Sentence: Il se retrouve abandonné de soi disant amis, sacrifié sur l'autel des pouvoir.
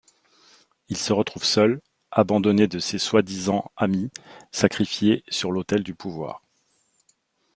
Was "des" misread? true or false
true